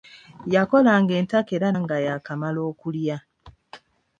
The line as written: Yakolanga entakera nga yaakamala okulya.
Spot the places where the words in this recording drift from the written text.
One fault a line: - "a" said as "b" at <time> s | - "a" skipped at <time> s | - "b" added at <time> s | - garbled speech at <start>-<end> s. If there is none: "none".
none